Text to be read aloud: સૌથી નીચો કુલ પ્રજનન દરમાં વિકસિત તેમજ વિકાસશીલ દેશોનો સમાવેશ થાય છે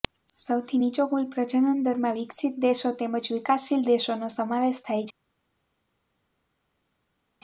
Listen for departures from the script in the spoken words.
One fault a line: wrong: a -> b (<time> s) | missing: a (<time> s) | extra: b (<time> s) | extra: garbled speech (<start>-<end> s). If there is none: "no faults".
extra: દેશો (2.6 s)